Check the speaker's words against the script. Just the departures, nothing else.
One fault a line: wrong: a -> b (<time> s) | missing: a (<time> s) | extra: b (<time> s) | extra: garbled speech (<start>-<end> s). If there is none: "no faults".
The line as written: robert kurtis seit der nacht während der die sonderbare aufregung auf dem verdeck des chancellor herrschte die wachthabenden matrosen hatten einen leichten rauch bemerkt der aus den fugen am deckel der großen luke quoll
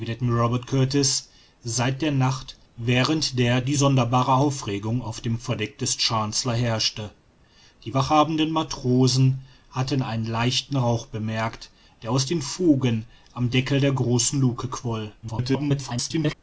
extra: garbled speech (15.2-16.3 s)